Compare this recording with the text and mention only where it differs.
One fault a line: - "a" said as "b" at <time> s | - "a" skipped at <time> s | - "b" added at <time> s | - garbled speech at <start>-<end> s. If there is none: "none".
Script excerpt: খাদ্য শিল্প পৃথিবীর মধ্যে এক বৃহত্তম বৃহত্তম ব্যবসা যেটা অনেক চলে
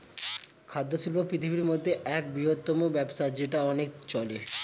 - "বৃহত্তম" skipped at 2.8 s